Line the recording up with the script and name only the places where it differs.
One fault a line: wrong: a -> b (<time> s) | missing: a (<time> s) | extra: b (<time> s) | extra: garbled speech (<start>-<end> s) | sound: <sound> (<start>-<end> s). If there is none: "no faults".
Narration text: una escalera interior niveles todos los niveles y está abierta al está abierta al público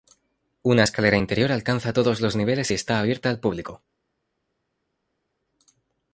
wrong: niveles -> alcanza (1.5 s)
missing: está abierta al (3.4 s)